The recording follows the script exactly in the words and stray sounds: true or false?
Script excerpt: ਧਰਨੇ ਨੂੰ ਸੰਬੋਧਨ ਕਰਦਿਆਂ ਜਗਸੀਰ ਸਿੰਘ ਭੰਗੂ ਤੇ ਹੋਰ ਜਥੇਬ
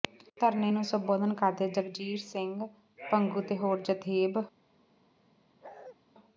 false